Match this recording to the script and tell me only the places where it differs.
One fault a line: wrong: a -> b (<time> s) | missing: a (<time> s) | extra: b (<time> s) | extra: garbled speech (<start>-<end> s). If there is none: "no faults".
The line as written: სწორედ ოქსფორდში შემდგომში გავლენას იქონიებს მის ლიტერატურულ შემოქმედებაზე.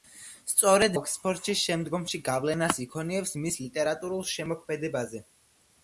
no faults